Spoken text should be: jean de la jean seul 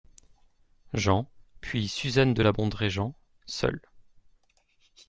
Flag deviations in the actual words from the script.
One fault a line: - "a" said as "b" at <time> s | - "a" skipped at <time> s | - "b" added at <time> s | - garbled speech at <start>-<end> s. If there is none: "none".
- "puis suzanne" added at 1.6 s
- "bondrée" added at 2.5 s